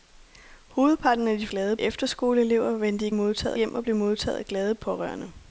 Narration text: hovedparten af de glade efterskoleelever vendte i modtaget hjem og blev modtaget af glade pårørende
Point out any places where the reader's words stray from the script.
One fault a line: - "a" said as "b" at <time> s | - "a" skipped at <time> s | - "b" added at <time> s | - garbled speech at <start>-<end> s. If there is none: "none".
none